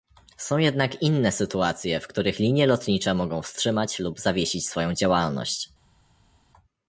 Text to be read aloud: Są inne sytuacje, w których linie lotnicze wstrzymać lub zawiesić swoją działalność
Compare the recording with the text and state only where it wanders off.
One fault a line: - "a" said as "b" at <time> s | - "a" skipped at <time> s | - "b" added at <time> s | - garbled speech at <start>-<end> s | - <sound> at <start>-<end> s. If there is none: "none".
- "jednak" added at 0.6 s
- "mogą" added at 3.1 s